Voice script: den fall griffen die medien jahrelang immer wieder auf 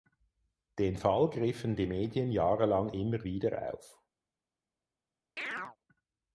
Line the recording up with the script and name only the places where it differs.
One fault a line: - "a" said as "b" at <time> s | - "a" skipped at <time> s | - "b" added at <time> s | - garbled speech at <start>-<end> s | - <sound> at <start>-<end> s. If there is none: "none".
- chirp at 5.4-5.8 s